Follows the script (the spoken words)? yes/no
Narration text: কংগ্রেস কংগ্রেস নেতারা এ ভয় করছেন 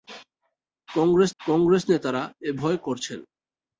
yes